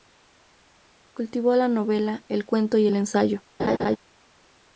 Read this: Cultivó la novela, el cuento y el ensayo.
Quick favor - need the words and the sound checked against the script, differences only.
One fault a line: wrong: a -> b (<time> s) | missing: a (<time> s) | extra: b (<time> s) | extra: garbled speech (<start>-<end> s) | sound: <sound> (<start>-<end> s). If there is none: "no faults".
sound: laugh (3.6-4.0 s)